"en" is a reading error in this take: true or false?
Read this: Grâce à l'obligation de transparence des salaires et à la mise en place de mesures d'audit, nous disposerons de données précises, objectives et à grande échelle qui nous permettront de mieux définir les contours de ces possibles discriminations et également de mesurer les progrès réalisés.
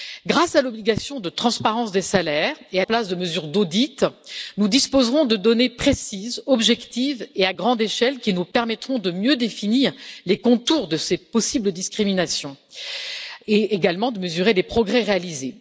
true